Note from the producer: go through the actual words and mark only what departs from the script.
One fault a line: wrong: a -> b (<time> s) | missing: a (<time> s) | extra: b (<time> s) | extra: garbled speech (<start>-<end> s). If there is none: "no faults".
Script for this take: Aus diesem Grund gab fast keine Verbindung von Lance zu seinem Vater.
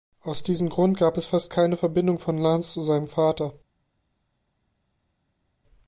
extra: es (1.2 s)